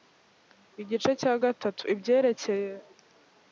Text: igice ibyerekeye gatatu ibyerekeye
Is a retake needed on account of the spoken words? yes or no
yes